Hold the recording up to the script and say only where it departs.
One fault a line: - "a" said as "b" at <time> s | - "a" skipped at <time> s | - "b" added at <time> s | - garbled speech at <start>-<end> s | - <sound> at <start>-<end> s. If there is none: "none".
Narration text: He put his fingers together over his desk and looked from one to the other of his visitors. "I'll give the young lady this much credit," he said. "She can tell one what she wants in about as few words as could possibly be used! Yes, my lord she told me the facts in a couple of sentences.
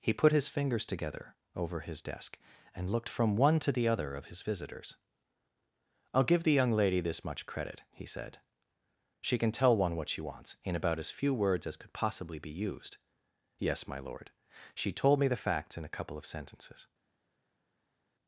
none